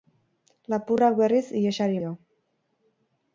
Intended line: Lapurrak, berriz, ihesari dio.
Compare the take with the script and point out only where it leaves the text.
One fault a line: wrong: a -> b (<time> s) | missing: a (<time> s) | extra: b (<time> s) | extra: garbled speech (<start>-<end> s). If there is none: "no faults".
no faults